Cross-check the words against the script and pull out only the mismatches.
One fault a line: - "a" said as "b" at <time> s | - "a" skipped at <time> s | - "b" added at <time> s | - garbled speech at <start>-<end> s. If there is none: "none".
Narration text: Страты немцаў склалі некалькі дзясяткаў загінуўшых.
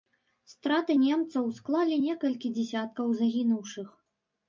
none